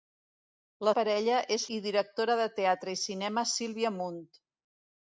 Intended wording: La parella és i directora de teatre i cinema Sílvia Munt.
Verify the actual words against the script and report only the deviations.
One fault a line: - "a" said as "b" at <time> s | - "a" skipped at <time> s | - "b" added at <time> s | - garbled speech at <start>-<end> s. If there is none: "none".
none